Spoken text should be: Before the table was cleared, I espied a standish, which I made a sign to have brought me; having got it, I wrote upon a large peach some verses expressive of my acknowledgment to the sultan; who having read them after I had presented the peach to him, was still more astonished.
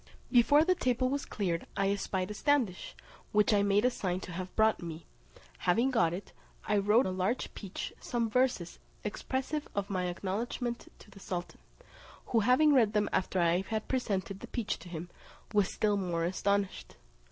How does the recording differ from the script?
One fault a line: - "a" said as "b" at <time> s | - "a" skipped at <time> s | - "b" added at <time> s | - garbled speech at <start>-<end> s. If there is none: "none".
- "upon" skipped at 7.1 s